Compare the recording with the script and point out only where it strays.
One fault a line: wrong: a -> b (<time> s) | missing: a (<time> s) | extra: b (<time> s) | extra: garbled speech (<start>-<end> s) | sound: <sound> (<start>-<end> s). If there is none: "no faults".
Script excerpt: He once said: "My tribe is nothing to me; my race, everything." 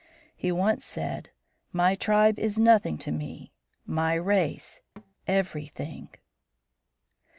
sound: thud (5.0-5.1 s)